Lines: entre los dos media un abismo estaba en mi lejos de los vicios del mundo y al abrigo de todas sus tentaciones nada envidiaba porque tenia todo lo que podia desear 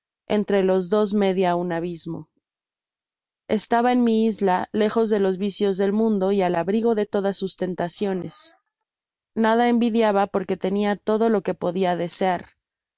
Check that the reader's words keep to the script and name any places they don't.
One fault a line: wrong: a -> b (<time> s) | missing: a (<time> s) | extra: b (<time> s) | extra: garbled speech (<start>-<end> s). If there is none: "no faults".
extra: isla (4.2 s)